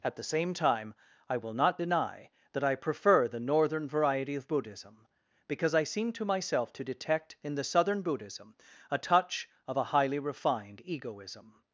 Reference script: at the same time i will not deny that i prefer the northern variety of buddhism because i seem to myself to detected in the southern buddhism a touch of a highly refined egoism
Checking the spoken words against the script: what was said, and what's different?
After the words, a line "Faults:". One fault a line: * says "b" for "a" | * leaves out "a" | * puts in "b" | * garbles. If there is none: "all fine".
at the same time i will not deny that i prefer the northern variety of buddhism because i seem to myself to detect in the southern buddhism a touch of a highly refined egoism
Faults:
* says "detect" for "detected"